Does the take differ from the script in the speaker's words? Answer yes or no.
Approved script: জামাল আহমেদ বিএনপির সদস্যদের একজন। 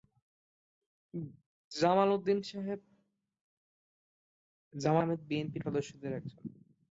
no